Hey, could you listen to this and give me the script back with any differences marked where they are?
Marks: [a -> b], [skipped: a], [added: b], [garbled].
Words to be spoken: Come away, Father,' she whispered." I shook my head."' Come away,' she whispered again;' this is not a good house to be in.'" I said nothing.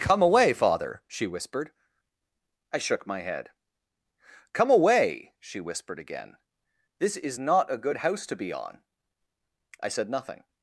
Come away, Father,' she whispered." I shook my head."' Come away,' she whispered again;' this is not a good house to be [in.'" -> on] I said nothing.